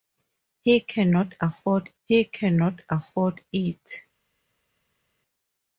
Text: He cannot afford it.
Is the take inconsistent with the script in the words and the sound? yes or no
yes